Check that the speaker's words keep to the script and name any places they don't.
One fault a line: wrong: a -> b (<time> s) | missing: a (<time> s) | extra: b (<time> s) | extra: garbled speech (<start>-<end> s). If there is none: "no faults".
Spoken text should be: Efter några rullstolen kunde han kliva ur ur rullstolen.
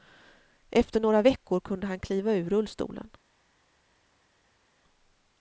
wrong: rullstolen -> veckor (1.2 s)
missing: ur (2.5 s)